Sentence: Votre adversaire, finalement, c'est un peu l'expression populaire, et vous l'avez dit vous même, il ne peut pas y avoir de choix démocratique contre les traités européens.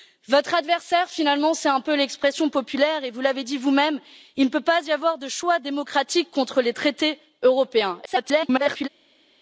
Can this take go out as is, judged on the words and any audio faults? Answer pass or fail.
fail